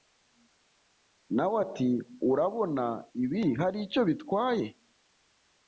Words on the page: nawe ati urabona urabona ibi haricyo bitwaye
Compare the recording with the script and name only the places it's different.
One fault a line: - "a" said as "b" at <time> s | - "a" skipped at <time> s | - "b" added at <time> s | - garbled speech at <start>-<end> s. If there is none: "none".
- "urabona" skipped at 2.8 s